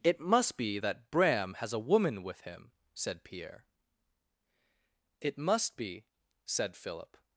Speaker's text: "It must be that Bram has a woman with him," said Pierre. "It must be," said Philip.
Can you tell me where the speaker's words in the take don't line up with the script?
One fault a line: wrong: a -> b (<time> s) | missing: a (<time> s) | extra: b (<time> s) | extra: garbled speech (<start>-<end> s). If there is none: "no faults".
no faults